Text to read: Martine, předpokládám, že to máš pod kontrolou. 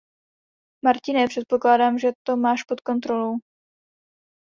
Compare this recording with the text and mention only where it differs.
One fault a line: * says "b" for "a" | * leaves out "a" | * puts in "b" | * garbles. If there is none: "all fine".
all fine